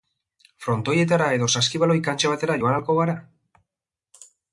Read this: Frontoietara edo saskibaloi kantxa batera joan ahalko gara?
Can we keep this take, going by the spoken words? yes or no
yes